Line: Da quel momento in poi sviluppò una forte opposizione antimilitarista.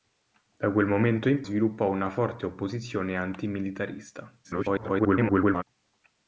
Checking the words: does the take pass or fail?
fail